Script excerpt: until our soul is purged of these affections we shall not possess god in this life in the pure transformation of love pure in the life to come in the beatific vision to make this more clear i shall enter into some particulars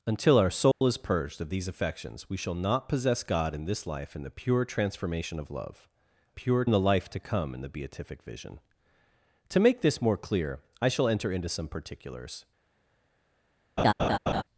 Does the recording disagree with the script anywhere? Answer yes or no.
no